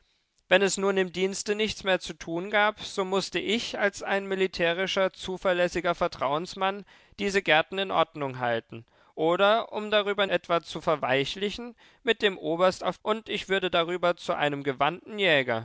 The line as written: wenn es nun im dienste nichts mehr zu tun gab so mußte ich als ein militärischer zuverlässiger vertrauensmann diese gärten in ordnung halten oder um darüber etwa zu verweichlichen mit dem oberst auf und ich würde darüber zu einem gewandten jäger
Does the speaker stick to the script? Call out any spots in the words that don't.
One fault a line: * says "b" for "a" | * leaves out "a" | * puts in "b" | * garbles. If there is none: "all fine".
all fine